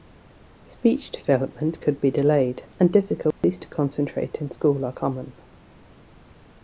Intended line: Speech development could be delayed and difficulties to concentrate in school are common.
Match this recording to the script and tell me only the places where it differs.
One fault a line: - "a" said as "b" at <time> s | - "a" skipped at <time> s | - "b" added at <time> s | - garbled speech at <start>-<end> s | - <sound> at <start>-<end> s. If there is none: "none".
- dropout at 3.3-3.4 s